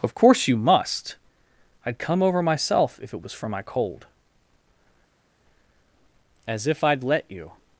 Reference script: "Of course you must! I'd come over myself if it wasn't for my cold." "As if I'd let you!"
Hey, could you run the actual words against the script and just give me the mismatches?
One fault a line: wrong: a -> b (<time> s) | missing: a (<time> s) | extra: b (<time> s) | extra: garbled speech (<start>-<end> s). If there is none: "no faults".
wrong: wasn't -> was (3.2 s)